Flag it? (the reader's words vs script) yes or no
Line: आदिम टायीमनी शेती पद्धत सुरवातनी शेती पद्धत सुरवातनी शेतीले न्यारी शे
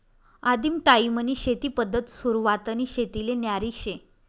yes